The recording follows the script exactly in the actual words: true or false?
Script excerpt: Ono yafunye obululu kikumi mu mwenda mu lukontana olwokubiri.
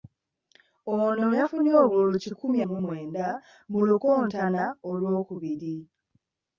true